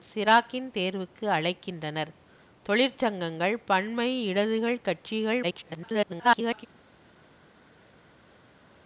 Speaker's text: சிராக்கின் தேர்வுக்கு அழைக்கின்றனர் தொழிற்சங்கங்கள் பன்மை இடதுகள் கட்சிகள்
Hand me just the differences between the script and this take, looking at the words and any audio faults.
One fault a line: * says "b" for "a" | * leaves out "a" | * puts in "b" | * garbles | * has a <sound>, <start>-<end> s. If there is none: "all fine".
* garbles